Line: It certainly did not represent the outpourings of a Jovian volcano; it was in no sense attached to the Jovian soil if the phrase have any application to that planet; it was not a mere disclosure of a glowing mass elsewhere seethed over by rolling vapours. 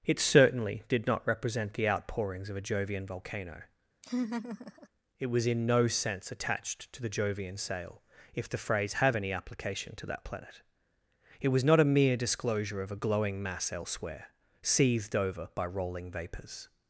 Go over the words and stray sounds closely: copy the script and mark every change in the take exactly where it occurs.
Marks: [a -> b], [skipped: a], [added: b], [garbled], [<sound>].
It certainly did not represent the outpourings of a Jovian volcano; [laugh] it was in no sense attached to the Jovian [soil -> sail] if the phrase have any application to that planet; it was not a mere disclosure of a glowing mass elsewhere seethed over by rolling vapours.